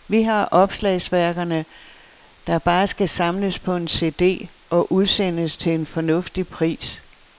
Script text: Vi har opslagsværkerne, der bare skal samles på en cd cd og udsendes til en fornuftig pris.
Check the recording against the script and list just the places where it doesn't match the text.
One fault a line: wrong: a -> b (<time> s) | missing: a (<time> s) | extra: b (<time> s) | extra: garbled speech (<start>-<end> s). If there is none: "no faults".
missing: cd (4.5 s)